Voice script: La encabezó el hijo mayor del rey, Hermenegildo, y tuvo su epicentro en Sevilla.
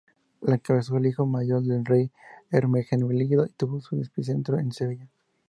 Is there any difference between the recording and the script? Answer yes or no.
no